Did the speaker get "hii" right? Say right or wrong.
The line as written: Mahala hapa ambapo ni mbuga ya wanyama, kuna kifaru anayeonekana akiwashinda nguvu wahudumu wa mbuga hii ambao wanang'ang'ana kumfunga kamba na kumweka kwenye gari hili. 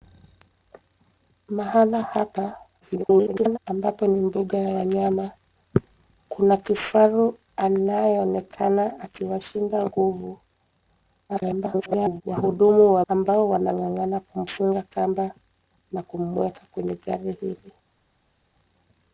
wrong